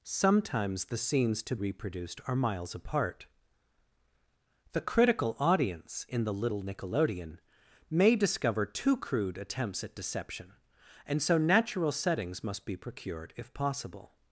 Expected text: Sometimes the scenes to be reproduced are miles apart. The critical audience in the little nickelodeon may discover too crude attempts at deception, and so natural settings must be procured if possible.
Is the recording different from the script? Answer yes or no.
yes